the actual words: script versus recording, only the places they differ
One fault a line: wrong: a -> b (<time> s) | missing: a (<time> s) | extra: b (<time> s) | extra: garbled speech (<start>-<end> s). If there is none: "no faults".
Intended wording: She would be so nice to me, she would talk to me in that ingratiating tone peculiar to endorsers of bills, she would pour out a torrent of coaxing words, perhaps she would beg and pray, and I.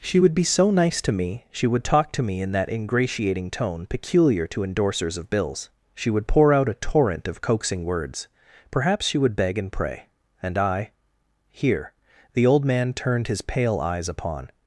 extra: here the old man turned his pale eyes upon (11.5 s)